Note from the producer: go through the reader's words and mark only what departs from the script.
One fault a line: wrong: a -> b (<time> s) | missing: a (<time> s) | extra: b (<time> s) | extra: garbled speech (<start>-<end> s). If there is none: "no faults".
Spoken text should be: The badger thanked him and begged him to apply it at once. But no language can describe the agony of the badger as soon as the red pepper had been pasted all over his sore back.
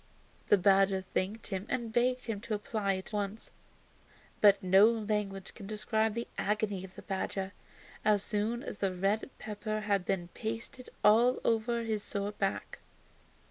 missing: at (3.1 s)